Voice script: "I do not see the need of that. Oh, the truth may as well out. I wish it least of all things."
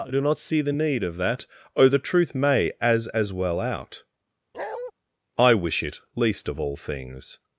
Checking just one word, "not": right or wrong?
right